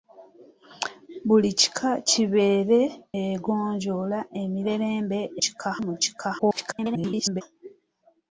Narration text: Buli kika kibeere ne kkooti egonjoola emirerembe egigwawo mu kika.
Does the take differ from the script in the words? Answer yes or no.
yes